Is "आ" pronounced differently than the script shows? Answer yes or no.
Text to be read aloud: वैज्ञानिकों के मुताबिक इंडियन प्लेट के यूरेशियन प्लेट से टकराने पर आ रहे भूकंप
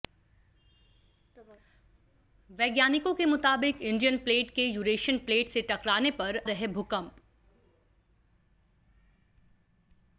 yes